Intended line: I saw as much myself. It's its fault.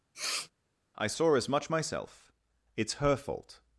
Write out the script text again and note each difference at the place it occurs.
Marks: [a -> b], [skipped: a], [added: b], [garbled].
I saw as much myself. It's [its -> her] fault.